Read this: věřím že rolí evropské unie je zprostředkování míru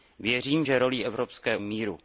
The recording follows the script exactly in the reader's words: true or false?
false